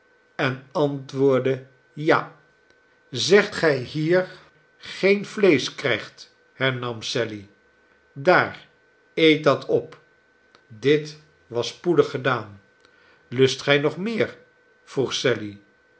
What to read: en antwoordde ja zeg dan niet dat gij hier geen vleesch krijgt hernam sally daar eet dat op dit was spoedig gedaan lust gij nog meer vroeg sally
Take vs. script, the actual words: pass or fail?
fail